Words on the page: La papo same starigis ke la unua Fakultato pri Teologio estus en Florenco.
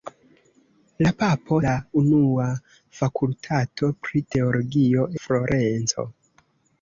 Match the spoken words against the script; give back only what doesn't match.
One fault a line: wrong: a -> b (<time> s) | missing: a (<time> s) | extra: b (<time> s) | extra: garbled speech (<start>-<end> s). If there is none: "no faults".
missing: same starigis ke (1.6 s)
missing: estus en (5.1 s)